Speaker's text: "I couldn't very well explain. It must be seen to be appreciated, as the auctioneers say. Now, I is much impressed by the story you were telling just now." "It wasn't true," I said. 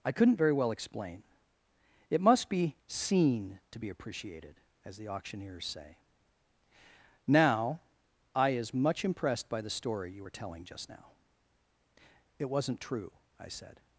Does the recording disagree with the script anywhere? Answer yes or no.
no